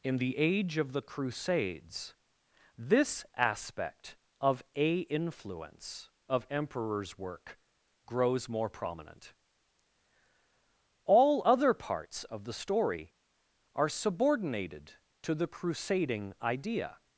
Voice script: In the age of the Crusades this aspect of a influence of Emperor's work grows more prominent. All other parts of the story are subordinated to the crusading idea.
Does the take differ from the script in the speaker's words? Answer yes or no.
no